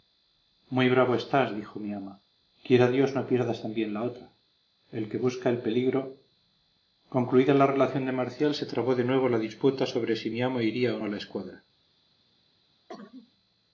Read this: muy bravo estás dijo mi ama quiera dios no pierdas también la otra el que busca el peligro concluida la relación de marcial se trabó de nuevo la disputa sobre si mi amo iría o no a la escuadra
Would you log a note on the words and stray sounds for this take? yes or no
yes